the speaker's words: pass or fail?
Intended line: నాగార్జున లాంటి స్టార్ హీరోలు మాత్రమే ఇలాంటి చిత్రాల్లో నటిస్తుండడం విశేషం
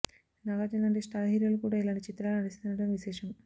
fail